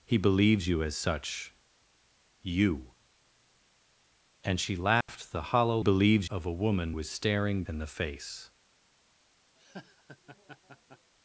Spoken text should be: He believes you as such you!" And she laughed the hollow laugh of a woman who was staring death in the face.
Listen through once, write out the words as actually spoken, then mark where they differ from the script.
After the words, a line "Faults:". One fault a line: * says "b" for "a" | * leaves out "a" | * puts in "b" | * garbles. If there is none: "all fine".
He believes you as such you!" And she laughed the hollow believes of a woman was staring in the face.
Faults:
* says "believes" for "laugh"
* leaves out "who"
* leaves out "death"